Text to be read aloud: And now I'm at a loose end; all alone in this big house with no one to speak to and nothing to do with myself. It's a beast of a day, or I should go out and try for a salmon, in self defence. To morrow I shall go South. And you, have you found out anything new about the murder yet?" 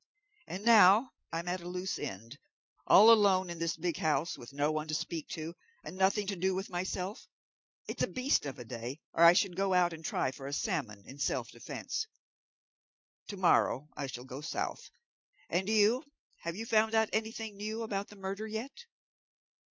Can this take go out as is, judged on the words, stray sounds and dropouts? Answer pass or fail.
pass